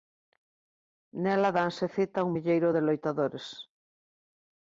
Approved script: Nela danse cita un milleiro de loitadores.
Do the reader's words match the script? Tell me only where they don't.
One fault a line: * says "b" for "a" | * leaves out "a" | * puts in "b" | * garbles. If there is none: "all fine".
all fine